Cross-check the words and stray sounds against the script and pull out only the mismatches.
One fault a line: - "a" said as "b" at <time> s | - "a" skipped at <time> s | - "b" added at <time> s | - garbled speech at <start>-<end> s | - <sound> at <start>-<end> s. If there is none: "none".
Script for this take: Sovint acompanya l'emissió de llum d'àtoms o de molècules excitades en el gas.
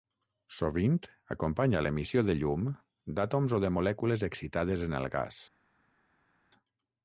none